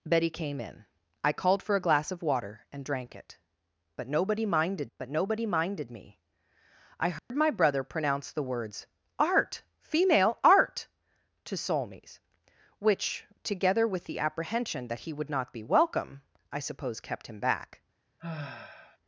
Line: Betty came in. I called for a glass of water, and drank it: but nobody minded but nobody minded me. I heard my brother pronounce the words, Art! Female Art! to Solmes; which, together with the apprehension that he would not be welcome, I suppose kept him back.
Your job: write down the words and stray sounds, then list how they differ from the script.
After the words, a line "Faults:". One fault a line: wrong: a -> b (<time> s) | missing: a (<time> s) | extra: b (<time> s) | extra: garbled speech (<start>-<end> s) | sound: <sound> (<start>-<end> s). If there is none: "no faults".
Betty came in. I called for a glass of water, and drank it: but nobody minded but nobody minded me. I heard my brother pronounce the words, Art! Female Art! to Solmes; which, together with the apprehension that he would not be welcome, I suppose kept him back.
Faults:
sound: dropout (7.2-7.3 s)
sound: sigh (18.2-19.0 s)